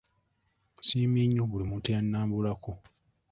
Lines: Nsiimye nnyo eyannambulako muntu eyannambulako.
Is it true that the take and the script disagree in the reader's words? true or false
true